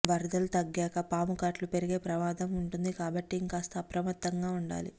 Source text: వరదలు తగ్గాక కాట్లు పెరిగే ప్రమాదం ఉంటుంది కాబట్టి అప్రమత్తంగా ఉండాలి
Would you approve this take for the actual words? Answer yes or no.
no